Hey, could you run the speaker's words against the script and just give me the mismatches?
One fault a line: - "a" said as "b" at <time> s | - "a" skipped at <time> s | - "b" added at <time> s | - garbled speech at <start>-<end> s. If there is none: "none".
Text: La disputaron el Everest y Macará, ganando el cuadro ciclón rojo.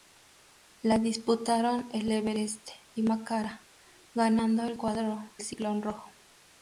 none